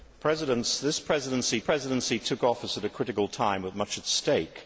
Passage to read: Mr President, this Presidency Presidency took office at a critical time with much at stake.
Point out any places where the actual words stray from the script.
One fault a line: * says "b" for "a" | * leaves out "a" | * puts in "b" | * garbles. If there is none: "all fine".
all fine